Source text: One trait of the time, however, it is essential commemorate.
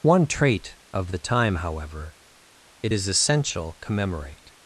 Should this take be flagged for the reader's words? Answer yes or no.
no